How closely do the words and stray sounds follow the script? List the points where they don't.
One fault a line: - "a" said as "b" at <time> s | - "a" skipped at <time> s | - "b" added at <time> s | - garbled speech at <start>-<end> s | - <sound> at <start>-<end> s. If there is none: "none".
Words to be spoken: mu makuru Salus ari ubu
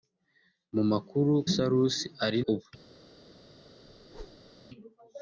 - whoosh at 3.9-4.5 s